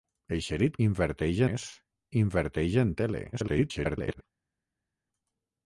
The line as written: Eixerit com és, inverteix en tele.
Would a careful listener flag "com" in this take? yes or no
yes